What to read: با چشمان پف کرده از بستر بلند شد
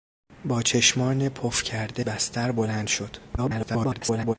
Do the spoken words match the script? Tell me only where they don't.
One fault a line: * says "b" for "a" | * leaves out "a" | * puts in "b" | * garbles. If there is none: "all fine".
* leaves out "از"
* garbles